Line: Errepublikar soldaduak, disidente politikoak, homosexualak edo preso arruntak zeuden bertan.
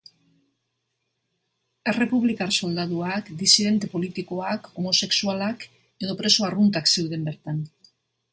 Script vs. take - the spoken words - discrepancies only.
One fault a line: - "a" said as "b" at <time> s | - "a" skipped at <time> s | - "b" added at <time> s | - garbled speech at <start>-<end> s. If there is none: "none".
none